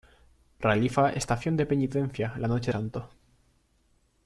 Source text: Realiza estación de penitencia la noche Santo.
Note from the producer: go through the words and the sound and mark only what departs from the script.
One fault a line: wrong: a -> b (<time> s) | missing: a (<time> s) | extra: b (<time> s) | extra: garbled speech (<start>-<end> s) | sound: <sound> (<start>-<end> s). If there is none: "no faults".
no faults